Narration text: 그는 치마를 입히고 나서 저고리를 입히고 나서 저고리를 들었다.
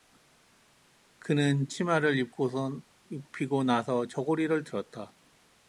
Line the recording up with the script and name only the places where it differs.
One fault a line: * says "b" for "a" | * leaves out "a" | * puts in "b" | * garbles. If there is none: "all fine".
* leaves out "입히고 나서 저고리를"